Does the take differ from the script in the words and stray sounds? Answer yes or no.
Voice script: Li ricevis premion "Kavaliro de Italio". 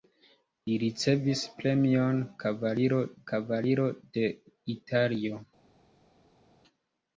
yes